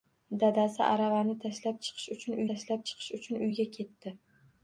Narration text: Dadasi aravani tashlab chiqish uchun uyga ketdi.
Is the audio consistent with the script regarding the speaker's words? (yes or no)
no